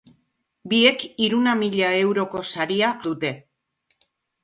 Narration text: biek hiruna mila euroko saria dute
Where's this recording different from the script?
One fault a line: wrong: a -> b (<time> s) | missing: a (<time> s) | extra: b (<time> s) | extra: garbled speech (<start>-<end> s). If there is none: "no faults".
no faults